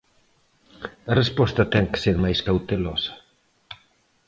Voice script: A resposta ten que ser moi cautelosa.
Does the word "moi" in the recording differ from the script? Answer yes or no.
yes